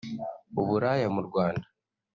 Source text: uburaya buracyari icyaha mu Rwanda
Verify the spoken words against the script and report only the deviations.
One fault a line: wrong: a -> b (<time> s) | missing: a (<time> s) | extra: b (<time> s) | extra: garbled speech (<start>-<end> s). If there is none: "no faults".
missing: buracyari icyaha (1.1 s)